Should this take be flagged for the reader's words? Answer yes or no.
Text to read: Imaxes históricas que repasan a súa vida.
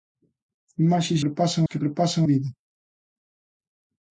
yes